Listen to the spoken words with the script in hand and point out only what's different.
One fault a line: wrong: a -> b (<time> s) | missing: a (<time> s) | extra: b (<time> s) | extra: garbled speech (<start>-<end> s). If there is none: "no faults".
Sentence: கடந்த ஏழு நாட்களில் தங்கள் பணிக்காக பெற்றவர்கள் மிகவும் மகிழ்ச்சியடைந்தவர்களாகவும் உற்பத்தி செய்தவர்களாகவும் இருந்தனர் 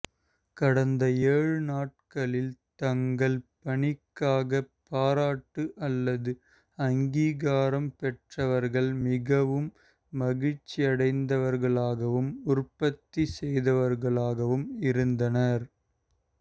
extra: பாராட்டு அல்லது அங்கீகாரம் (4.9 s)